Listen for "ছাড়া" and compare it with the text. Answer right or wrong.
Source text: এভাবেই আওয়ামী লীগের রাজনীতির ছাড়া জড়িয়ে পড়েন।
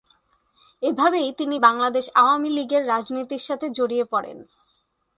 wrong